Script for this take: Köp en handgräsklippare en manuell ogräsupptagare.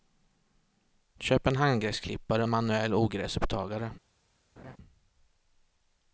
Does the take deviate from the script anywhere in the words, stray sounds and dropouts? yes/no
yes